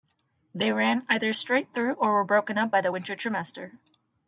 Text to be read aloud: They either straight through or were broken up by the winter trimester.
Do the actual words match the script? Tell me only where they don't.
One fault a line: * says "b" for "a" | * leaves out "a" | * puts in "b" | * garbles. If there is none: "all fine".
* puts in "ran"